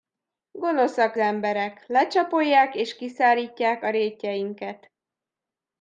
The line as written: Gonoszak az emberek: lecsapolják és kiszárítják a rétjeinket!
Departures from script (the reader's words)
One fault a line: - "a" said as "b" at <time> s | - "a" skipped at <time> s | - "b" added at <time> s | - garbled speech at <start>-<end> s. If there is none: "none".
- "az" skipped at 1.1 s